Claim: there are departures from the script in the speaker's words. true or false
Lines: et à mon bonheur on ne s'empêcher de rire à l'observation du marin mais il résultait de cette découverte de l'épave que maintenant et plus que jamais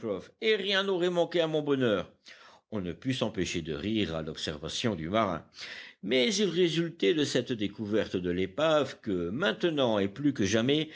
true